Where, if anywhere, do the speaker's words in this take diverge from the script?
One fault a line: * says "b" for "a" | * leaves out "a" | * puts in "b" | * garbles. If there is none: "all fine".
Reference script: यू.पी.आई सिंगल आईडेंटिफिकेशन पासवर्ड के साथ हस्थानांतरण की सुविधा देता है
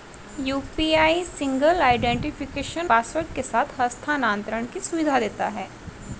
all fine